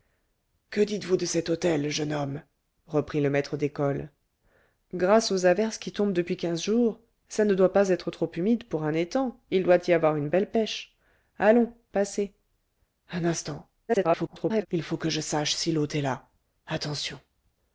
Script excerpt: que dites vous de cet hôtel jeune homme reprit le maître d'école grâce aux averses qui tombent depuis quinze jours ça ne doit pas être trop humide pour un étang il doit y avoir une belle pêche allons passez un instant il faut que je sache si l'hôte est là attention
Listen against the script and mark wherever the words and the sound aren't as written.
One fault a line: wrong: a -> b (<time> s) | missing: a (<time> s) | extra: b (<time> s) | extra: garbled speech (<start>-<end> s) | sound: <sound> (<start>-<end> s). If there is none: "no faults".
extra: garbled speech (13.9-14.7 s)